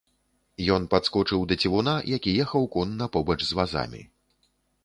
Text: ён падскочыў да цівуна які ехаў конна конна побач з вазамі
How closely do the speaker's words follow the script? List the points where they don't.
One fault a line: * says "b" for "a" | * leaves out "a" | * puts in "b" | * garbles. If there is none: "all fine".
* leaves out "конна"